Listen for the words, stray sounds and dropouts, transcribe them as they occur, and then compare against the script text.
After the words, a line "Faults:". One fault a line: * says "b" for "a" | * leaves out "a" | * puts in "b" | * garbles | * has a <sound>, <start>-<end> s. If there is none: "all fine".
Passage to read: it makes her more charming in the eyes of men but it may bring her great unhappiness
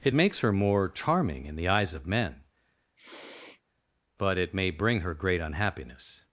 it makes her more charming in the eyes of men but it may bring her great unhappiness
Faults:
* has a sniff, 3.0-3.6 s